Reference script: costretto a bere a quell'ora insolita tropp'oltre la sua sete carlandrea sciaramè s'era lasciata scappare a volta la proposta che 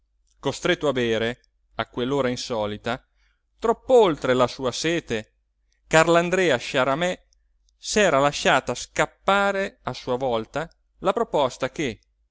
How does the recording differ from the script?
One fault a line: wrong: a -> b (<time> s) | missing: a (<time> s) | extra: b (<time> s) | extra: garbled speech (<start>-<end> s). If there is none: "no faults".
extra: sua (9.9 s)